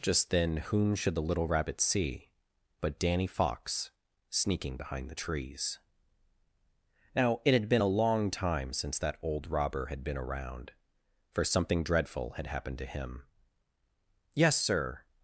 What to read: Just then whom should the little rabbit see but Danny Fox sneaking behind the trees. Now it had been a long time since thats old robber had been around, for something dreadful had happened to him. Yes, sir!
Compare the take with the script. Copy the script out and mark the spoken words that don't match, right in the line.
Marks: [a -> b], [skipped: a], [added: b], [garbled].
Just then whom should the little rabbit see but Danny Fox sneaking behind the trees. Now it had been a long time since [thats -> that] old robber had been around, for something dreadful had happened to him. Yes, sir!